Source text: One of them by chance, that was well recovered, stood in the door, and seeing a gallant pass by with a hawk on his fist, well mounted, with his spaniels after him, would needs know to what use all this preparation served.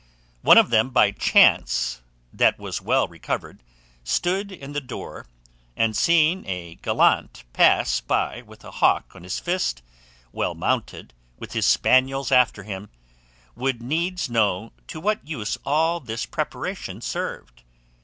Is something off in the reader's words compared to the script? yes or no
no